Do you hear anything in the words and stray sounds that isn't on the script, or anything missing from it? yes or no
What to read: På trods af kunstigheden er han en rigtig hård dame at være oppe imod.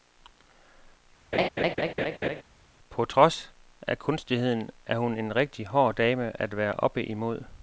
yes